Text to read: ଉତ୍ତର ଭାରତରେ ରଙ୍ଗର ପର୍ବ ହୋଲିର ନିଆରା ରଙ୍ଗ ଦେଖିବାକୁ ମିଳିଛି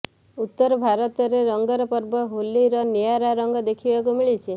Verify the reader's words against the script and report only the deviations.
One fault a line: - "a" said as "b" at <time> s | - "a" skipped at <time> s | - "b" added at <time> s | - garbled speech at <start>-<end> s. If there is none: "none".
none